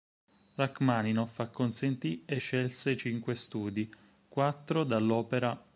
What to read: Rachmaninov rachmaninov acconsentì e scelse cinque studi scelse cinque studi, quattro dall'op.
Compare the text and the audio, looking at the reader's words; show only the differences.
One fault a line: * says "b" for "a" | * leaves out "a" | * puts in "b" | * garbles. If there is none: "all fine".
* leaves out "rachmaninov"
* leaves out "scelse cinque studi"